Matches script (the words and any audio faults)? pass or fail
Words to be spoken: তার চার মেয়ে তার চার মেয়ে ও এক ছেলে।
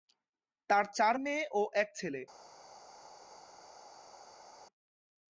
fail